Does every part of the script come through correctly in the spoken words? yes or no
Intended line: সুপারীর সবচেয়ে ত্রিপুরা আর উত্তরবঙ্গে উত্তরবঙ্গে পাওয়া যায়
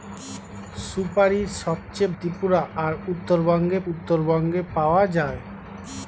yes